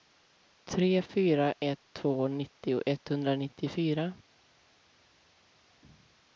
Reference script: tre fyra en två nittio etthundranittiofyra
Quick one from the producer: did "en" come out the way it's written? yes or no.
no